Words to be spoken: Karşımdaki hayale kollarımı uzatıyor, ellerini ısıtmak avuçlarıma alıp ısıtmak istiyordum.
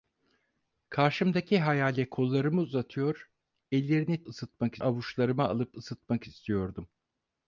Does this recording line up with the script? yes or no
yes